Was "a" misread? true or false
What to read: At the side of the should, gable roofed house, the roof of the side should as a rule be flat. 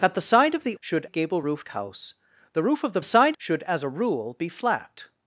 false